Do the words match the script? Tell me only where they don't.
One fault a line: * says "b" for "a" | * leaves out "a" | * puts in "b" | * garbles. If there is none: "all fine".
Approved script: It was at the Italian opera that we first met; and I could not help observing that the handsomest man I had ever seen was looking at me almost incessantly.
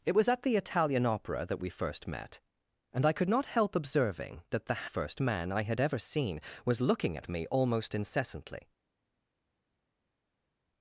* says "first" for "handsomest"